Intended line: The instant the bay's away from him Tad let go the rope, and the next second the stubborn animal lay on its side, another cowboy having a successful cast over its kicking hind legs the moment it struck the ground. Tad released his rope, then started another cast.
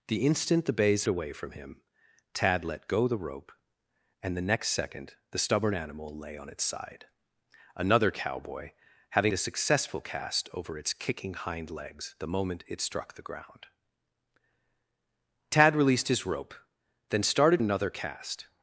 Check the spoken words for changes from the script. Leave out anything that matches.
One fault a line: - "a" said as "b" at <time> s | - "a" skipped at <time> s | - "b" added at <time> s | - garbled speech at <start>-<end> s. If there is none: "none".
none